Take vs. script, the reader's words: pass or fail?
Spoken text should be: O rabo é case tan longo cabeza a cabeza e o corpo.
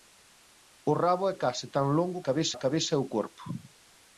pass